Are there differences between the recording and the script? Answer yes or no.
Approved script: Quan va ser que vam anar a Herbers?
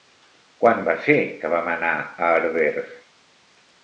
no